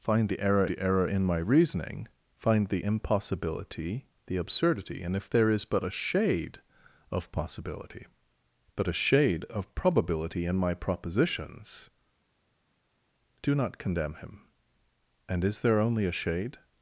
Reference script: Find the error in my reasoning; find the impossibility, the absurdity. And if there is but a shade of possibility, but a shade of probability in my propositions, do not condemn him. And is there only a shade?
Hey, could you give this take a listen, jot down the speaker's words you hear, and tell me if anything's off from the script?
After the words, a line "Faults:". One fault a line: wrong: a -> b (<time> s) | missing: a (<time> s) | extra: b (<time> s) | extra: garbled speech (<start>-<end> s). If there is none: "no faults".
Find the error the error in my reasoning; find the impossibility, the absurdity. And if there is but a shade of possibility, but a shade of probability in my propositions, do not condemn him. And is there only a shade?
Faults:
extra: the error (0.7 s)